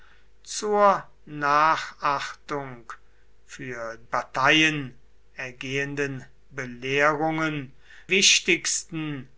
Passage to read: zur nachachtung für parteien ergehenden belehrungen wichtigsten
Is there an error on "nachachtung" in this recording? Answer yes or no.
no